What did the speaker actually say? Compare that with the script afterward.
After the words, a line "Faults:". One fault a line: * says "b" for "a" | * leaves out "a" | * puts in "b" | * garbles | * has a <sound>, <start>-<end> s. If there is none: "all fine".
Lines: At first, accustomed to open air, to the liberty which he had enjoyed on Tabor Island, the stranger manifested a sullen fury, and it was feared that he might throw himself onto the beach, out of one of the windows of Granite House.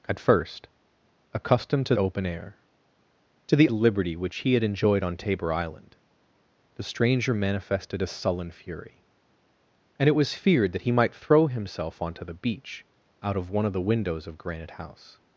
At first, accustomed to open air, to the liberty which he had enjoyed on Tabor Island, the stranger manifested a sullen fury, and it was feared that he might throw himself onto the beach, out of one of the windows of Granite House.
Faults:
all fine